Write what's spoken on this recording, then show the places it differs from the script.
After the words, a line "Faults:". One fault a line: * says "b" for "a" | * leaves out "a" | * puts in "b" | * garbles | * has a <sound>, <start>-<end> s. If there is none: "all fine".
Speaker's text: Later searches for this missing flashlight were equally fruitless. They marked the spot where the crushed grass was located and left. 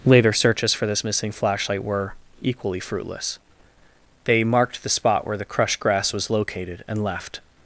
Later searches for this missing flashlight were equally fruitless. They marked the spot where the crushed grass was located and left.
Faults:
all fine